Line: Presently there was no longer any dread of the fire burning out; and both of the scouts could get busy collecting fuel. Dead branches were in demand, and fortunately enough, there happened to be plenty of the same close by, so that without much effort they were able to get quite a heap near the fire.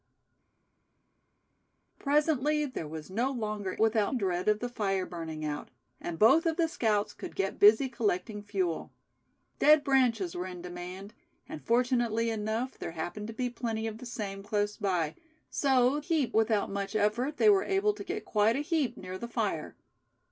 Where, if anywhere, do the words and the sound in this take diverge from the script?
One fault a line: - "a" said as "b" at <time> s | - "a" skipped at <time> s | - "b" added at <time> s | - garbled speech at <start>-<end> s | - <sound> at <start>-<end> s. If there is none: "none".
- "any" said as "without" at 3.8 s
- "that" said as "heap" at 16.0 s